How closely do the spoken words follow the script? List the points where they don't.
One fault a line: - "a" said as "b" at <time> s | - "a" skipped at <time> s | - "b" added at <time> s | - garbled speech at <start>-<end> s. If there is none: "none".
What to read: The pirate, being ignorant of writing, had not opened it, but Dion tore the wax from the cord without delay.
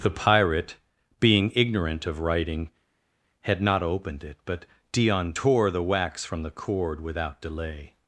none